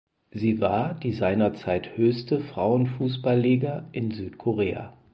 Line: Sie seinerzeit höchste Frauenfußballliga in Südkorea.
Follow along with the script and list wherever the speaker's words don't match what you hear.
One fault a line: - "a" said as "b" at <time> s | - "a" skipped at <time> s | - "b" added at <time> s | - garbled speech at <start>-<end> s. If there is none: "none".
- "war die" added at 0.6 s